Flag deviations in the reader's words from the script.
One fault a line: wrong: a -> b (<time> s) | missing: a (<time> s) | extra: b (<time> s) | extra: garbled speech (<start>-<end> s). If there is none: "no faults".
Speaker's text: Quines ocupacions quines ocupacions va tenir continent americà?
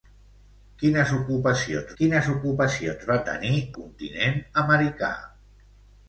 no faults